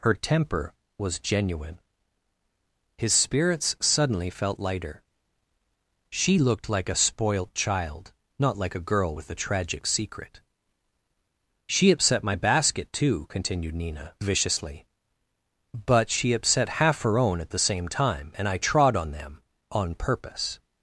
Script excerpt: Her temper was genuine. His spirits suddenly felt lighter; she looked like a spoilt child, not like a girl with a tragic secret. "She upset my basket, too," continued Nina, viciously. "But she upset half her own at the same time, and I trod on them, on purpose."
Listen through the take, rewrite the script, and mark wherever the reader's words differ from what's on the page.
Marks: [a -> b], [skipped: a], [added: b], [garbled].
Her temper was genuine. His spirits suddenly felt lighter; she looked like a spoilt child, not like a girl with a tragic secret. "She upset my basket, too," continued Nina, viciously. "But she upset half her own at the same time, and I trod on them, on purpose."